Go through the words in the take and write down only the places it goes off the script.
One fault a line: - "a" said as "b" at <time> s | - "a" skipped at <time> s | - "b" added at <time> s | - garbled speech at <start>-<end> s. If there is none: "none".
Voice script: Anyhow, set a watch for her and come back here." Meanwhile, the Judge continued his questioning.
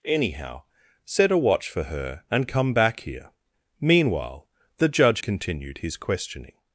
none